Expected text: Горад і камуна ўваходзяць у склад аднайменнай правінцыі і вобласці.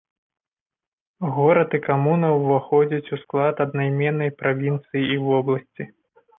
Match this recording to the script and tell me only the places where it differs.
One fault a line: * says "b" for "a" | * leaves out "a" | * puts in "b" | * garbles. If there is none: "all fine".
all fine